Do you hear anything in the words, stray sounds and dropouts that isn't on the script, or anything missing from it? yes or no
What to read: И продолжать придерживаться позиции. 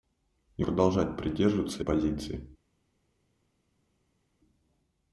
no